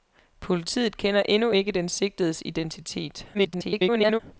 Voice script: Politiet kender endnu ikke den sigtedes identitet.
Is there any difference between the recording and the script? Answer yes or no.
yes